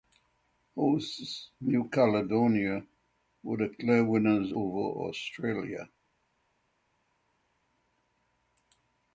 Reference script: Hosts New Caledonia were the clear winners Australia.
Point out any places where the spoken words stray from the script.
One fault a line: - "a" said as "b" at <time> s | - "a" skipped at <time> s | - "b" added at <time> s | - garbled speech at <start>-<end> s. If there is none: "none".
- "over" added at 4.5 s